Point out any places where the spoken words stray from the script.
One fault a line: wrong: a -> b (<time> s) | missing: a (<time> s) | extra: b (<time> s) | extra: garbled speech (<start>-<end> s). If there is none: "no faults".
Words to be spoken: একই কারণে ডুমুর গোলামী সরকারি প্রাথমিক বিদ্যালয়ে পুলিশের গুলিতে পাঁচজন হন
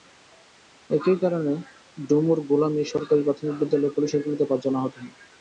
extra: আহত (4.8 s)